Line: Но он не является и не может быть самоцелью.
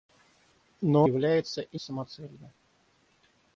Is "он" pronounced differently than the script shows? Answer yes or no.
yes